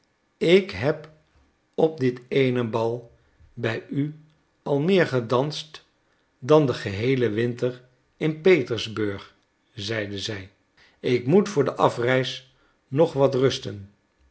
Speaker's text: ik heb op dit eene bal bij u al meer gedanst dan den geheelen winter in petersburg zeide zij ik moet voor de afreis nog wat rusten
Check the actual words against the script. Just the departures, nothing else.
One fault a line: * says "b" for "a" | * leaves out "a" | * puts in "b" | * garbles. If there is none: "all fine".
all fine